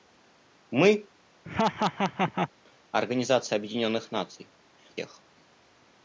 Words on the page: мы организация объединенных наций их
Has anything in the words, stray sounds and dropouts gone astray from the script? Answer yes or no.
yes